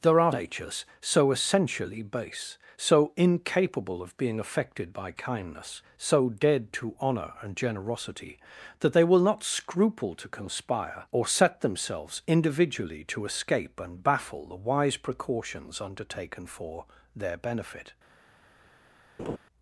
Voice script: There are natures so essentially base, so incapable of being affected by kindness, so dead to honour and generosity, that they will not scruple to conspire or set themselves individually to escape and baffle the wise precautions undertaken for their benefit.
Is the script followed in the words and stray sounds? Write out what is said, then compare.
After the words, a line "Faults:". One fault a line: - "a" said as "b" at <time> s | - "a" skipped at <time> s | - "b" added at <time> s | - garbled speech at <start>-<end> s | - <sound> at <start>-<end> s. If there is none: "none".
There are natures so essentially base, so incapable of being affected by kindness, so dead to honour and generosity, that they will not scruple to conspire or set themselves individually to escape and baffle the wise precautions undertaken for their benefit.
Faults:
- laugh at 19.2-19.4 s